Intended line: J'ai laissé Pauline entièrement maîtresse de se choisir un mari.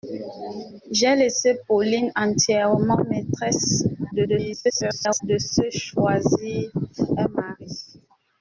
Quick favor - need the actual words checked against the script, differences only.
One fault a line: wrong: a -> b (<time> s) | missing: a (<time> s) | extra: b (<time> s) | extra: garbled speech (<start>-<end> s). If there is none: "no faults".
extra: garbled speech (4.1-5.2 s)